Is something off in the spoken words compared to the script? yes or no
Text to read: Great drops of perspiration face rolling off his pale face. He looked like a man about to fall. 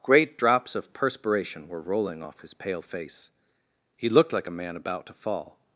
yes